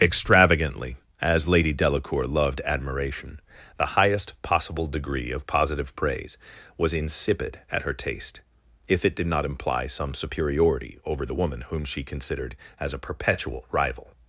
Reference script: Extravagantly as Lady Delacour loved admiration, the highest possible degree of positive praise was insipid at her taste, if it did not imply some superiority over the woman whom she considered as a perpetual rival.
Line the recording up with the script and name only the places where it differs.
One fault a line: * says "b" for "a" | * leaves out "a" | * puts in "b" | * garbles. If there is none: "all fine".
all fine